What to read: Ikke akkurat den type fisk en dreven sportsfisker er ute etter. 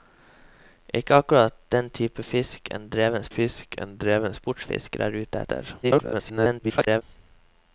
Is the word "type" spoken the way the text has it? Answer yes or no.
yes